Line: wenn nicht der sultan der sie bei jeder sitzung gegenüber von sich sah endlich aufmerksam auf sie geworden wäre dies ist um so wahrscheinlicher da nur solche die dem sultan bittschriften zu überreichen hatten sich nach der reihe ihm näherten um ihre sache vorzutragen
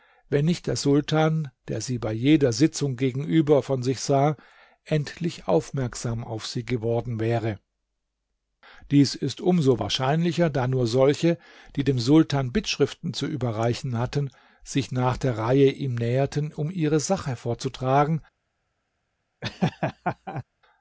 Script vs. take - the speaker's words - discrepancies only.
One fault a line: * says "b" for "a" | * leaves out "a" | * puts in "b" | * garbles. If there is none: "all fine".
all fine